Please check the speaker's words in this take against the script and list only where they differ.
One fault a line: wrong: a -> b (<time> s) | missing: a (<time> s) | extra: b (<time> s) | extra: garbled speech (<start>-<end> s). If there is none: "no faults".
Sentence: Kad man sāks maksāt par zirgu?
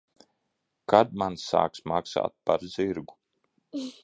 no faults